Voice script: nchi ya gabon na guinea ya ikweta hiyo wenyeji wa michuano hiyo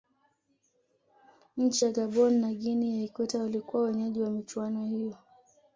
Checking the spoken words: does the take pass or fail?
fail